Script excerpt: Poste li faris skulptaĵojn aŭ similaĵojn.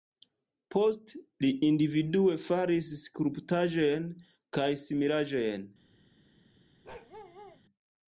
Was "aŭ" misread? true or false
true